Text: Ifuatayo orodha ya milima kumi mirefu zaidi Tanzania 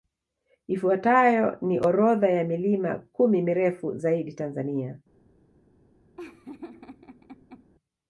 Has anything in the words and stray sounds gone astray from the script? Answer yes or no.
yes